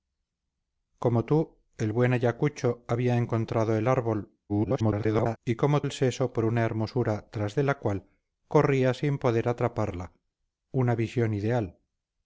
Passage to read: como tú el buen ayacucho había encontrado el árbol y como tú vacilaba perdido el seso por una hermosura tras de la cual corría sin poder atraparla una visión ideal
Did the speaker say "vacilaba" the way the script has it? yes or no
no